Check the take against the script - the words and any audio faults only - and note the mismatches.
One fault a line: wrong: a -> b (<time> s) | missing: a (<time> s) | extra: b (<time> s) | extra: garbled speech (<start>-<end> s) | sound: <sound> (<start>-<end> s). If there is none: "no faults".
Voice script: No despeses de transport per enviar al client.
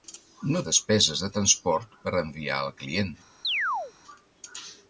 sound: chirp (3.4-3.9 s)